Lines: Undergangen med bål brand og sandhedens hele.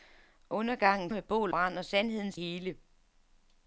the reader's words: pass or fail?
pass